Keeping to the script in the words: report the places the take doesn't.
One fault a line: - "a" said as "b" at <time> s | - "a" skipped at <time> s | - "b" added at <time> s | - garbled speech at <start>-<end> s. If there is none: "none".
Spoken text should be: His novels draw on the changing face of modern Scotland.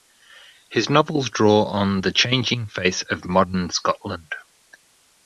none